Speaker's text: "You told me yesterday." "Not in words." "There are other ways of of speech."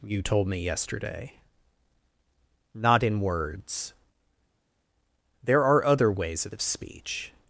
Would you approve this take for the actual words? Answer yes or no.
yes